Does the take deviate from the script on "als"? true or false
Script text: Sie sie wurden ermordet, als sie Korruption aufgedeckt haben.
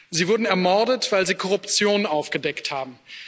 true